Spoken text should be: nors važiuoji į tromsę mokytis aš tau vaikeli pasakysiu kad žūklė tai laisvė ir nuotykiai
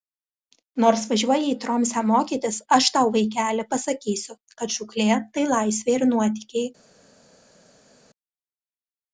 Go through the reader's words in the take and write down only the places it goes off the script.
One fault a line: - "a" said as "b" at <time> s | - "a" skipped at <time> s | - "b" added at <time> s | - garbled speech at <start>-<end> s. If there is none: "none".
none